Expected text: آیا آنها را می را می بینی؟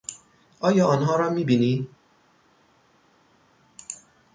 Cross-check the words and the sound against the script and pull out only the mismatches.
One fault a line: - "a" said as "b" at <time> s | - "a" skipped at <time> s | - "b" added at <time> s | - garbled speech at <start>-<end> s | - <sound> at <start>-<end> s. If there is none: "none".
- "را می" skipped at 1.4 s